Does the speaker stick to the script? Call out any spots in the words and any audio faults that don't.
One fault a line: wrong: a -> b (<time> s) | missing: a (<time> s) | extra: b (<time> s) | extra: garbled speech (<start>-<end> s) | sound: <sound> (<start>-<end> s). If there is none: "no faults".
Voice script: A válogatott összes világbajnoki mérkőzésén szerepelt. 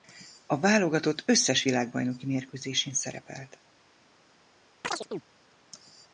sound: chirp (4.8-5.2 s)